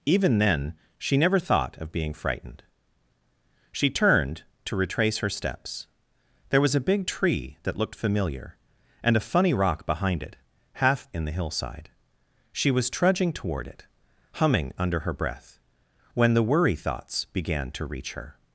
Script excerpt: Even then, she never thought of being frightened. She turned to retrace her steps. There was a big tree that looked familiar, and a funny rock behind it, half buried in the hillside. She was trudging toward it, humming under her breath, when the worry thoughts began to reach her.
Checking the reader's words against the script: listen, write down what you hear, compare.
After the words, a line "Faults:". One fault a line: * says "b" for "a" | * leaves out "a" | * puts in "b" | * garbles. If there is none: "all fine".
Even then, she never thought of being frightened. She turned to retrace her steps. There was a big tree that looked familiar, and a funny rock behind it, half in the hillside. She was trudging toward it, humming under her breath, when the worry thoughts began to reach her.
Faults:
* leaves out "buried"